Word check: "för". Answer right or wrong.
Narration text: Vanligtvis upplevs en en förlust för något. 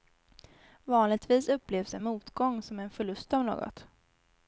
wrong